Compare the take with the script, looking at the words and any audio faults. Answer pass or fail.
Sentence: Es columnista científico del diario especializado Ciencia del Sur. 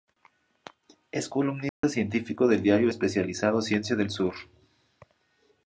fail